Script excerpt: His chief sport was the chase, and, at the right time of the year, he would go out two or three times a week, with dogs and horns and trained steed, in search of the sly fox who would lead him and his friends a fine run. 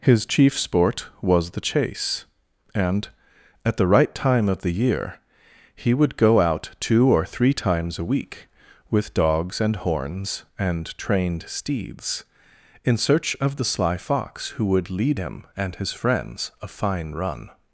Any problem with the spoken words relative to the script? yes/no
yes